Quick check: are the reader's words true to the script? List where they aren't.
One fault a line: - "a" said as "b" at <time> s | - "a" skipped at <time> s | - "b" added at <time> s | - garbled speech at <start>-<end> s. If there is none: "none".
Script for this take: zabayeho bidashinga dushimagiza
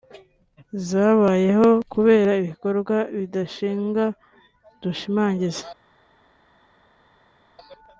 - "kubera ibikorwa" added at 1.9 s